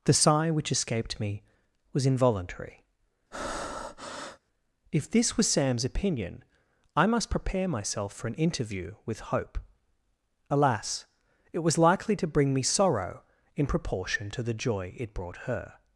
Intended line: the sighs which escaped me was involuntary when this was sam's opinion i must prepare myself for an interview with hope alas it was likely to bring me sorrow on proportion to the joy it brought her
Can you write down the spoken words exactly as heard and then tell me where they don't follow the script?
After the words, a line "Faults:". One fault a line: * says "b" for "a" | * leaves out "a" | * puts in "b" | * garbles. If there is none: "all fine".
the sigh which escaped me was involuntary if this was sam's opinion i must prepare myself for an interview with hope alas it was likely to bring me sorrow in proportion to the joy it brought her
Faults:
* says "sigh" for "sighs"
* says "if" for "when"
* says "in" for "on"